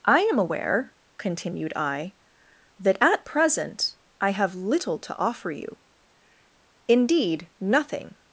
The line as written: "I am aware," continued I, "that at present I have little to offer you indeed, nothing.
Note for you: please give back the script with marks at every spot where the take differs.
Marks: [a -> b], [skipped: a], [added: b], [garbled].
"I am aware," continued I, "that at present I have little to offer you indeed, nothing.